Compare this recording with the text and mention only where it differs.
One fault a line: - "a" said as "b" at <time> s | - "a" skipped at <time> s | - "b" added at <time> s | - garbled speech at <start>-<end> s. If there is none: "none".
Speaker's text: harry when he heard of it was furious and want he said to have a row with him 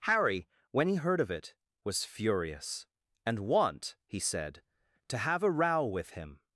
none